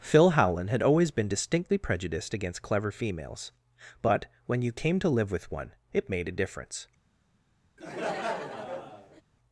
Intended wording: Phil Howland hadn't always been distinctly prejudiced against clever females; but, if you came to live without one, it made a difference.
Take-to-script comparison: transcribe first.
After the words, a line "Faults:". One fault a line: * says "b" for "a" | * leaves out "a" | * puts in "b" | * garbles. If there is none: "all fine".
Phil Howland had always been distinctly prejudiced against clever females; but, when you came to live with one, it made a difference.
Faults:
* says "had" for "hadn't"
* says "when" for "if"
* says "with" for "without"